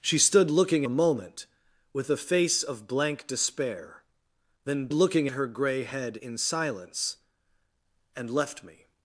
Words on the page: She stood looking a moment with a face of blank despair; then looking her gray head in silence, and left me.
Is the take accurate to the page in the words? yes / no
yes